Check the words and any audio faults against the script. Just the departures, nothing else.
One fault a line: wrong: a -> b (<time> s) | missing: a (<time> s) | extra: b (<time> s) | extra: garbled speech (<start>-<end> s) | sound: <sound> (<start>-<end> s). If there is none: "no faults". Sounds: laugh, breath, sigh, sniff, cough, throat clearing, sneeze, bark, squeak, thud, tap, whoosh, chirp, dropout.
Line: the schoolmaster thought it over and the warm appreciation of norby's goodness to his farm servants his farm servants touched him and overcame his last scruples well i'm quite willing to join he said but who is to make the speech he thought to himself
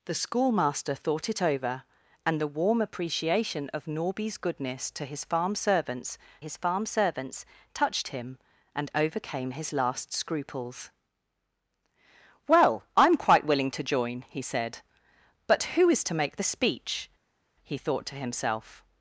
no faults